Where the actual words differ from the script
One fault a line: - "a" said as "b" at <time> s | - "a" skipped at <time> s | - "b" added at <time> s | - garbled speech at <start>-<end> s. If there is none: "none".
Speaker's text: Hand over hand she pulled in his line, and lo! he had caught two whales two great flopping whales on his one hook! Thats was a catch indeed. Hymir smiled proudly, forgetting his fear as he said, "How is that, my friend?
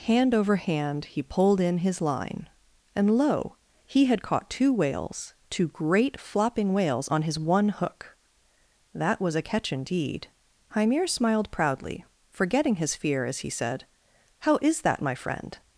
- "she" said as "he" at 1.1 s
- "Thats" said as "That" at 8.9 s